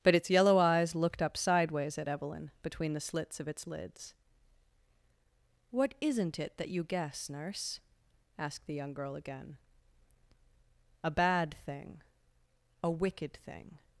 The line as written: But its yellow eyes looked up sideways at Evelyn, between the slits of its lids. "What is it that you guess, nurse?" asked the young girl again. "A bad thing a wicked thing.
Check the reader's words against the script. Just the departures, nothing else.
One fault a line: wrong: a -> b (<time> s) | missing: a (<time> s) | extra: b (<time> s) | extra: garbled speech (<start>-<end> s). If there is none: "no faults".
wrong: is -> isn't (6.0 s)